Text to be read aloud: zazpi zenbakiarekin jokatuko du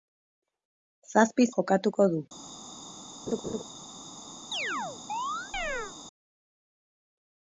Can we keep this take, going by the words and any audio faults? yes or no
no